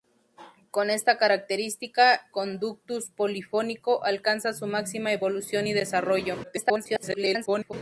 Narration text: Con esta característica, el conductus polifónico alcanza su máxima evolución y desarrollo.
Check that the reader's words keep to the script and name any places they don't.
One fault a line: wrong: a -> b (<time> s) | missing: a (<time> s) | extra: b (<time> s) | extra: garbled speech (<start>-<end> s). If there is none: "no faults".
missing: el (2.3 s)
extra: garbled speech (6.4-7.7 s)